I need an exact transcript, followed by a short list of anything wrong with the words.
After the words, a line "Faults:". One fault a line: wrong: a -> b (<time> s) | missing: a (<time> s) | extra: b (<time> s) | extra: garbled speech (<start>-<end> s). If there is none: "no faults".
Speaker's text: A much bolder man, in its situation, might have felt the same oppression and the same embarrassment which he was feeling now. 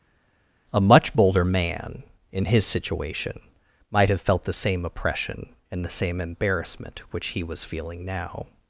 A much bolder man, in his situation, might have felt the same oppression and the same embarrassment which he was feeling now.
Faults:
wrong: its -> his (2.5 s)